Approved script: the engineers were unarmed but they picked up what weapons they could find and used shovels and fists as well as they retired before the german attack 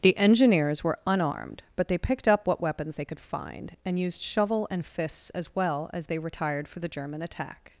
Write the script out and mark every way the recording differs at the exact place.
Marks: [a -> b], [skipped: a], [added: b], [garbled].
the engineers were unarmed but they picked up what weapons they could find and used [shovels -> shovel] and fists as well as they retired [before -> for] the german attack